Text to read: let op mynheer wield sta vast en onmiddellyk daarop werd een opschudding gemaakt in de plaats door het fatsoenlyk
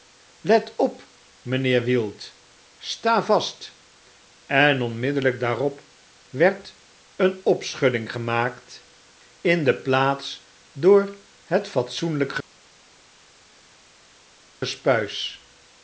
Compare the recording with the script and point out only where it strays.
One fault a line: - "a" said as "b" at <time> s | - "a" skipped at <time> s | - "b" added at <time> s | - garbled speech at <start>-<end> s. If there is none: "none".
none